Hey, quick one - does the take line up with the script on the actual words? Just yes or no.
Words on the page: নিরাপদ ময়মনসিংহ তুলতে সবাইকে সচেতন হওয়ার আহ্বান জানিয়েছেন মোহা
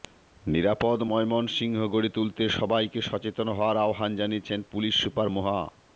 no